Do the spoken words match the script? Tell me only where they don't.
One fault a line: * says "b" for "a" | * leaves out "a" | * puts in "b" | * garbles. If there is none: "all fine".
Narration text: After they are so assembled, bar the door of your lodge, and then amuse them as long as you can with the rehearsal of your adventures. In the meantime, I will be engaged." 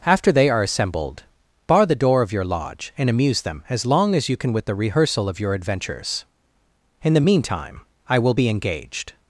* leaves out "so"
* leaves out "then"